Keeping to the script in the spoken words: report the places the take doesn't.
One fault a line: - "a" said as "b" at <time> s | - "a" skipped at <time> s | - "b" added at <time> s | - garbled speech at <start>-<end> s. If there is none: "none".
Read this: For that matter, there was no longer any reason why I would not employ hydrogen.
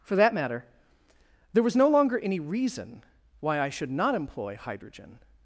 - "would" said as "should" at 3.7 s